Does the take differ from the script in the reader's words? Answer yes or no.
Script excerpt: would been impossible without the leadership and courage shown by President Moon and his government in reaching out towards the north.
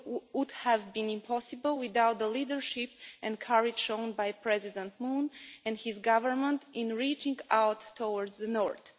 yes